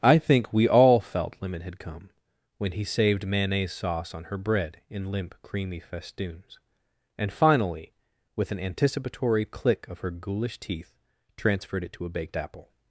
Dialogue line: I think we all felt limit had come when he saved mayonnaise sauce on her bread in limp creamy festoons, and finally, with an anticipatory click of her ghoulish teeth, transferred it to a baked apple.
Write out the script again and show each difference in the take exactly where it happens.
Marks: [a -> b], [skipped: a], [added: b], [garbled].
I think we all felt limit had come when he saved mayonnaise sauce on her bread in limp creamy festoons, and finally, with an anticipatory click of her ghoulish teeth, transferred it to a baked apple.